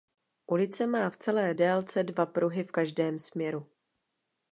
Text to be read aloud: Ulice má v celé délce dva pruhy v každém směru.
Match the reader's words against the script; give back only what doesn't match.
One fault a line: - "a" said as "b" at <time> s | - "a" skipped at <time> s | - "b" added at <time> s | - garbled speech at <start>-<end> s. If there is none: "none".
none